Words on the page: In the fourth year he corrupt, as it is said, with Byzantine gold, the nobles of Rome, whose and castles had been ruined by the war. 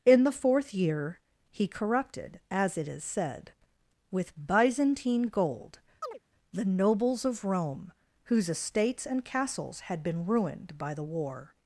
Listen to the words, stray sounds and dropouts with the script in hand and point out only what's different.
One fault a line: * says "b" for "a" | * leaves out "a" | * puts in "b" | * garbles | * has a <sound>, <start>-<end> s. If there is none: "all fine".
* says "corrupted" for "corrupt"
* has a chirp, 6.0-6.2 s
* puts in "estates"